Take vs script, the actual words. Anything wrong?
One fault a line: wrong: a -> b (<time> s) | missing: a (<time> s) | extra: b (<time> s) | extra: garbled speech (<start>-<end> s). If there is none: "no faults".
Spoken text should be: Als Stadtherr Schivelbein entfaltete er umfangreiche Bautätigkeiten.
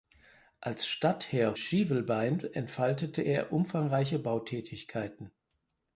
no faults